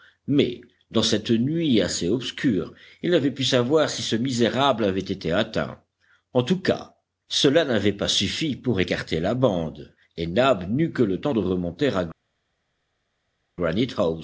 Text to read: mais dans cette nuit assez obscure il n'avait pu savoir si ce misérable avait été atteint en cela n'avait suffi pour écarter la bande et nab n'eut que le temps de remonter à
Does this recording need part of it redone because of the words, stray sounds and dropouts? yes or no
yes